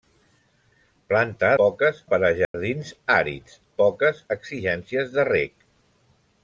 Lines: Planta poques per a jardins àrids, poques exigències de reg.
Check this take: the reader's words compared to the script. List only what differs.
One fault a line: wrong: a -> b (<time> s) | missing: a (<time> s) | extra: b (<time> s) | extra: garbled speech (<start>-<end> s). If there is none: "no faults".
no faults